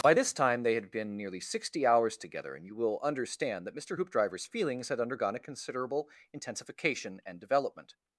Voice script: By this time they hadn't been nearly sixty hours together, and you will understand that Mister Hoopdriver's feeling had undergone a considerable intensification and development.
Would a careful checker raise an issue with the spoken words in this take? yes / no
yes